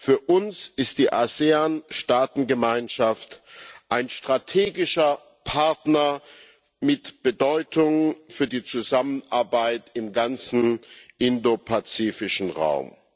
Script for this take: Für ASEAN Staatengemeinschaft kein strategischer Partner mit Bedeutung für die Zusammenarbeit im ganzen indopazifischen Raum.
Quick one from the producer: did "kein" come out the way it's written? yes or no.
no